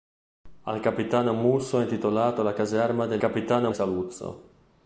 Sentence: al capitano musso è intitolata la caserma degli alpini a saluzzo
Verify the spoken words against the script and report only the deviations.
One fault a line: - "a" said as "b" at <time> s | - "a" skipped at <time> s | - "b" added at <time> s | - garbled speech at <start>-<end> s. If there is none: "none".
- "alpini" said as "capitano" at 3.2 s